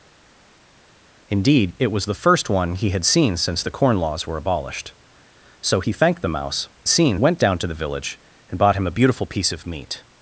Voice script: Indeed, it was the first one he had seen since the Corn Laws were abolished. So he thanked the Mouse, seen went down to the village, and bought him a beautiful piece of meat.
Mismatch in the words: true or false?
false